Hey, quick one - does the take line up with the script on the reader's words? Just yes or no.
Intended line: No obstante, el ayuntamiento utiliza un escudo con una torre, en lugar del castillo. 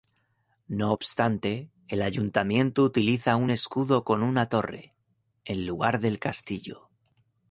yes